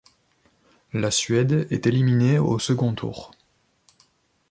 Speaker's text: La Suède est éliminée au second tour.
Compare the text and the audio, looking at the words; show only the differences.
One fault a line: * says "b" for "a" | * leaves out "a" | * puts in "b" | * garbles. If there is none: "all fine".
all fine